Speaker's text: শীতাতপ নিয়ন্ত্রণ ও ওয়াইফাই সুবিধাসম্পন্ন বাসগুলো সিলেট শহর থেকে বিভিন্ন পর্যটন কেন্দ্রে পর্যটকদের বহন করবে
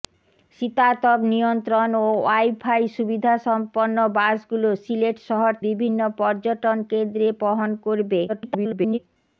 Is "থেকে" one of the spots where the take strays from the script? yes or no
yes